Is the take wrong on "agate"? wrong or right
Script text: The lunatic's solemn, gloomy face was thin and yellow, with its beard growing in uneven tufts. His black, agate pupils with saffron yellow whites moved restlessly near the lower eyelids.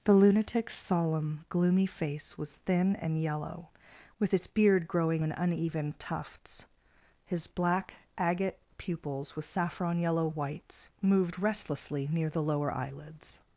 right